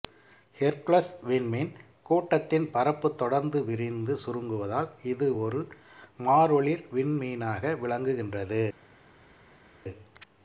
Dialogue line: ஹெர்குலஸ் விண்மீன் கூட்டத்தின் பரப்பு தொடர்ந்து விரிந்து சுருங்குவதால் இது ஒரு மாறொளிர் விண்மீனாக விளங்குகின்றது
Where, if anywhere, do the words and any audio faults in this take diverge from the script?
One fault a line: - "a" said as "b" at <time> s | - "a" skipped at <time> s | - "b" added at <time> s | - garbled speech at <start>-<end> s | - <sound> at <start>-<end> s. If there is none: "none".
none